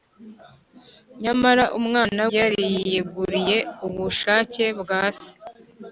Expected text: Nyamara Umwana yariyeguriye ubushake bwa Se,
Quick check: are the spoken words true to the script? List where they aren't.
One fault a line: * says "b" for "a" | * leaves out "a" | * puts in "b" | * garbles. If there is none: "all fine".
all fine